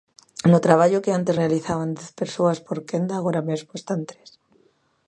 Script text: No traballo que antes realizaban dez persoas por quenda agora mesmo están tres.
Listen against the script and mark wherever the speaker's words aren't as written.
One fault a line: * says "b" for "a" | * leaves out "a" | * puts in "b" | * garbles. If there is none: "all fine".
all fine